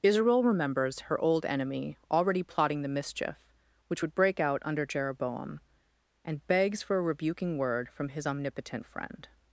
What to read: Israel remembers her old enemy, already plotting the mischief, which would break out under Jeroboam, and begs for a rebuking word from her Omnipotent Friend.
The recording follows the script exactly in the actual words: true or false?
false